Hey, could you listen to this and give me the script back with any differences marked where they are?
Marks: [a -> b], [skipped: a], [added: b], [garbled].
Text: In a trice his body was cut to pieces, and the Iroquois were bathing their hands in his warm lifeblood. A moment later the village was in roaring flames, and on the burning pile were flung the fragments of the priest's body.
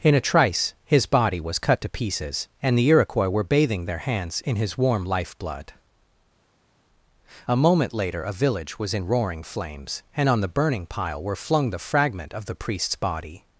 In a trice his body was cut to pieces, and the Iroquois were bathing their hands in his warm lifeblood. A moment later [the -> a] village was in roaring flames, and on the burning pile were flung the [fragments -> fragment] of the priest's body.